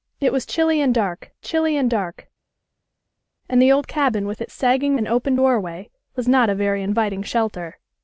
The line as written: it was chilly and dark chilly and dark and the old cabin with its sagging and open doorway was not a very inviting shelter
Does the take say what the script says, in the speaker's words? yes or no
yes